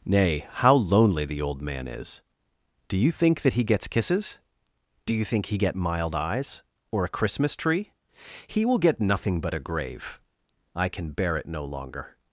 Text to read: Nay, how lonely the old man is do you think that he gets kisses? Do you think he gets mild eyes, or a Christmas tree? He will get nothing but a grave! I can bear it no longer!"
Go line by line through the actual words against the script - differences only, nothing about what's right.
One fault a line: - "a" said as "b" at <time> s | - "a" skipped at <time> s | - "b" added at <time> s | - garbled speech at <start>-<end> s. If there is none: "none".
- "gets" said as "get" at 5.5 s